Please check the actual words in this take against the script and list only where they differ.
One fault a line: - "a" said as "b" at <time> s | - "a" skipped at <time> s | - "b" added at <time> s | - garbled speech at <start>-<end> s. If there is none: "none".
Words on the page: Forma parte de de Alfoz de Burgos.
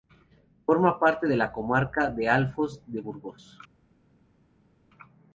- "la comarca" added at 1.3 s